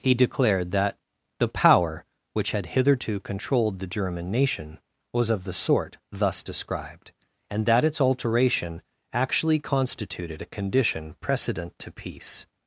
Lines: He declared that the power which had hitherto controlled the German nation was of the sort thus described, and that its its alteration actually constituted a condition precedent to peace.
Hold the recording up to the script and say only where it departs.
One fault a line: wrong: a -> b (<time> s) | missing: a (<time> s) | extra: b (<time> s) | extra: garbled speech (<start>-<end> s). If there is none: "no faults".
missing: its (8.0 s)